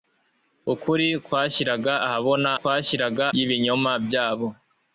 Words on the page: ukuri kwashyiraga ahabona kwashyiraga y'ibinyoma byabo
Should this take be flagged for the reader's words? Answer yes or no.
no